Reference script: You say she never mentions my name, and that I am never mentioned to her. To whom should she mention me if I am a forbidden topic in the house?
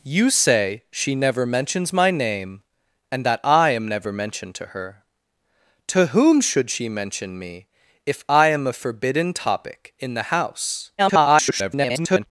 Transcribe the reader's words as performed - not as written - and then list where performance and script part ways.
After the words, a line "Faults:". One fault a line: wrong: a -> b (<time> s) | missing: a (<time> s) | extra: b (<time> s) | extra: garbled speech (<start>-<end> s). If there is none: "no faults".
You say she never mentions my name, and that I am never mentioned to her. To whom should she mention me if I am a forbidden topic in the house? [garbled]
Faults:
extra: garbled speech (11.0-12.3 s)